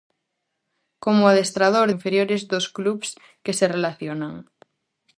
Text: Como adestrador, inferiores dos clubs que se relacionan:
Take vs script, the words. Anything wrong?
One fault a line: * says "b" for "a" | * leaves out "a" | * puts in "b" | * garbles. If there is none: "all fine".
all fine